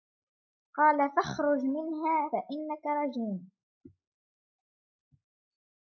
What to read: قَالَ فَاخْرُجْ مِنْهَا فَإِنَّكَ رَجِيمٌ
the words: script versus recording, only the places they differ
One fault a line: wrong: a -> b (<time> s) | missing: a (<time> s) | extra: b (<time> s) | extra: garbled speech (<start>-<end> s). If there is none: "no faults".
no faults